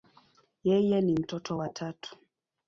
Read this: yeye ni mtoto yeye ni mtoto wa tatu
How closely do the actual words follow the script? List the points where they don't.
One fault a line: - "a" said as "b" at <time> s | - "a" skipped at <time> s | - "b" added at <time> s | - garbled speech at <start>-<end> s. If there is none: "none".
- "yeye ni mtoto" skipped at 1.6 s